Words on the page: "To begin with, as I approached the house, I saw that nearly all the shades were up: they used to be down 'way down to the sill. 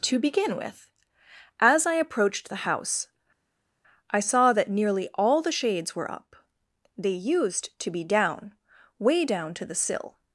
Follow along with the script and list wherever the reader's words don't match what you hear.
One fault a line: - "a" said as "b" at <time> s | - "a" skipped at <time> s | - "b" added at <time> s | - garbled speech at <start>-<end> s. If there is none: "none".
none